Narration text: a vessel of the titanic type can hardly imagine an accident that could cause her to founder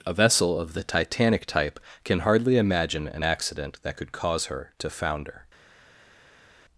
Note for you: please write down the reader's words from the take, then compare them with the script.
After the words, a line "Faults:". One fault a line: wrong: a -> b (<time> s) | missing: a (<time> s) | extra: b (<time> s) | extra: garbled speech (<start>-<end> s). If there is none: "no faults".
a vessel of the titanic type can hardly imagine an accident that could cause her to founder
Faults:
no faults